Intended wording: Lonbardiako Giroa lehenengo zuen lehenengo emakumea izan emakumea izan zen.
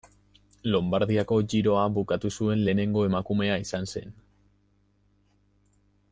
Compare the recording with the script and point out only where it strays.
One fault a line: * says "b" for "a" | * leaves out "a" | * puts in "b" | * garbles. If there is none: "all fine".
* says "bukatu" for "lehenengo"
* leaves out "emakumea izan"